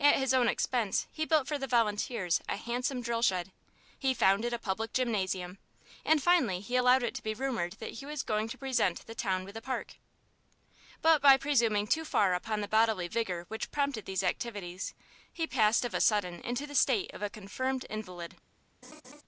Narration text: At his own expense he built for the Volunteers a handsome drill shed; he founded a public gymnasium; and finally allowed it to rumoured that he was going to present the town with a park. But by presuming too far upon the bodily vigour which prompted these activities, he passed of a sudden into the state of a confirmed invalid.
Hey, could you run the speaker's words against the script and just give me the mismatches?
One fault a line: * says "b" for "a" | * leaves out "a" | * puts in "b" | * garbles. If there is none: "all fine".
* puts in "he"
* puts in "be"